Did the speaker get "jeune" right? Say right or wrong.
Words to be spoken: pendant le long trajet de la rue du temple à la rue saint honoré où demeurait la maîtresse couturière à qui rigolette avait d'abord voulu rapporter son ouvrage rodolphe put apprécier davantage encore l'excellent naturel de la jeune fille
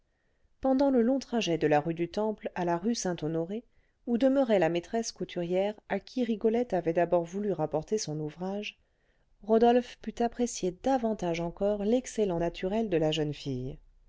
right